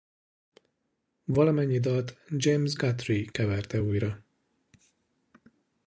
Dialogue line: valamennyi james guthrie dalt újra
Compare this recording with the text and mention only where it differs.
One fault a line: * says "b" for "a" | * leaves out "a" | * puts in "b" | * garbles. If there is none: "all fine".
* puts in "dalt"
* says "keverte" for "dalt"